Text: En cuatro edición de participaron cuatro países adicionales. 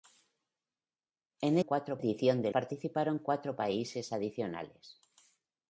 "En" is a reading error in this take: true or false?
false